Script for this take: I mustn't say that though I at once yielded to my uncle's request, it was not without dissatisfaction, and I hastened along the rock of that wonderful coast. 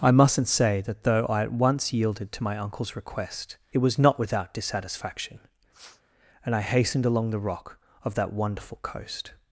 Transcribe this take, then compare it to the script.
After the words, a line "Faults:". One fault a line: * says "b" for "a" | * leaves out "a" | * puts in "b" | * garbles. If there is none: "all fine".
I mustn't say that though I at once yielded to my uncle's request, it was not without dissatisfaction, and I hastened along the rock of that wonderful coast.
Faults:
all fine